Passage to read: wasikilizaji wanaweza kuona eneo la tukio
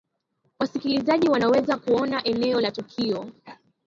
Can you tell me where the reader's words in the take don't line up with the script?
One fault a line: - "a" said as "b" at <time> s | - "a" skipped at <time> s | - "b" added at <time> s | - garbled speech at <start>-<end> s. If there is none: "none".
none